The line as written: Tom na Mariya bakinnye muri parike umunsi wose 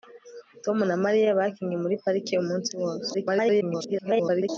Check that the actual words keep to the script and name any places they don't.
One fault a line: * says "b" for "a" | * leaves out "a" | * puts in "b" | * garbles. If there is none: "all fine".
* garbles